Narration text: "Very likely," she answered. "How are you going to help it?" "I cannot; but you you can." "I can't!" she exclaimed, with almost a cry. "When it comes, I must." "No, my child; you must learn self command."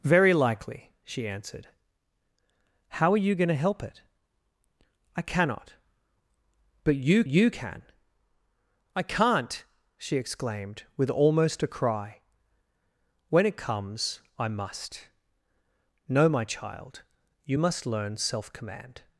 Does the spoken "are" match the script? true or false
true